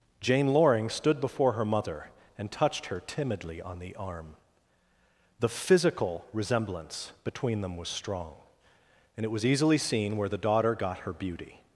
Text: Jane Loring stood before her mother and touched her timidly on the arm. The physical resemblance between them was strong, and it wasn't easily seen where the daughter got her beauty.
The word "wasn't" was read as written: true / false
false